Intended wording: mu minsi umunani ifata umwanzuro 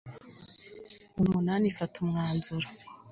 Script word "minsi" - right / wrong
wrong